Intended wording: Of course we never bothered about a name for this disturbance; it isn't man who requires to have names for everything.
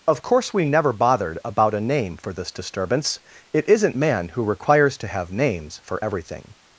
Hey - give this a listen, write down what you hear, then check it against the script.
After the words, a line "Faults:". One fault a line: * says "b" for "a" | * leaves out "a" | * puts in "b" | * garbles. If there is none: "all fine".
Of course we never bothered about a name for this disturbance; it isn't man who requires to have names for everything.
Faults:
all fine